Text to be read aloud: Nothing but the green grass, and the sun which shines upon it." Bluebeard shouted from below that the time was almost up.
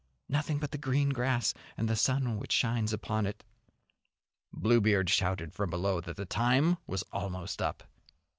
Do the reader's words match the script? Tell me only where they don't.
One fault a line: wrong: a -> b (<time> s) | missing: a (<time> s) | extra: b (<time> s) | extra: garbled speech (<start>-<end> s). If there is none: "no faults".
no faults